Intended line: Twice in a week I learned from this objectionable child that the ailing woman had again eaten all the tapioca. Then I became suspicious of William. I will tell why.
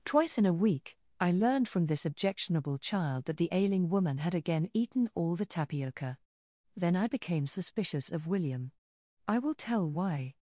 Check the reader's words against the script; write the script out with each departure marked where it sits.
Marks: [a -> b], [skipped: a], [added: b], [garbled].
Twice in a week I learned from this objectionable child that the ailing woman had again eaten all the tapioca. Then I became suspicious of William. I will tell why.